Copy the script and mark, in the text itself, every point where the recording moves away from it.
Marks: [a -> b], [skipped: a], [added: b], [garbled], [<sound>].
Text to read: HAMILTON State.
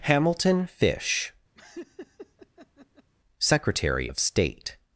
HAMILTON [added: FISH Secretary of] [laugh] State.